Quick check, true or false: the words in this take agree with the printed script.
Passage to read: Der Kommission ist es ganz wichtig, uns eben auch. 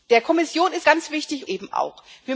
false